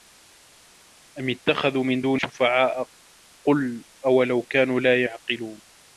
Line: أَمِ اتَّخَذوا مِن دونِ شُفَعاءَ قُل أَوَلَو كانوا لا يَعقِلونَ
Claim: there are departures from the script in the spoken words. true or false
false